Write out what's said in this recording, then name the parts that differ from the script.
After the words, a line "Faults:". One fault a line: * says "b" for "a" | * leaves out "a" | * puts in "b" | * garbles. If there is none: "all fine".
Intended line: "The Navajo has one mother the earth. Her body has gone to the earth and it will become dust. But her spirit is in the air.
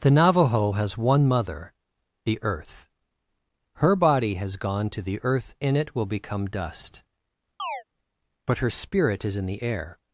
"The Navajo has one mother the earth. Her body has gone to the earth in it will become dust. But her spirit is in the air.
Faults:
* says "in" for "and"